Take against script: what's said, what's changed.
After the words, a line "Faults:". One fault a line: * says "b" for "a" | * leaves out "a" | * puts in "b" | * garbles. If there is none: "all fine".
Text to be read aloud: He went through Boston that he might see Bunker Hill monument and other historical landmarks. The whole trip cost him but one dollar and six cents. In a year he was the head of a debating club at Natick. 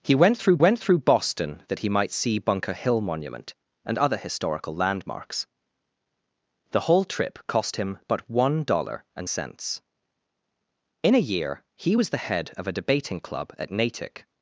He went through went through Boston that he might see Bunker Hill monument and other historical landmarks. The whole trip cost him but one dollar and cents. In a year he was the head of a debating club at Natick.
Faults:
* puts in "went through"
* leaves out "six"